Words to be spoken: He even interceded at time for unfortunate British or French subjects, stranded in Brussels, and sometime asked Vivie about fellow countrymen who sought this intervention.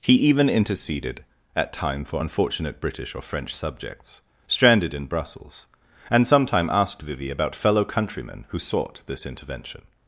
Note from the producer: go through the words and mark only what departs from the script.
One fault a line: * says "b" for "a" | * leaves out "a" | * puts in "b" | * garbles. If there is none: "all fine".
all fine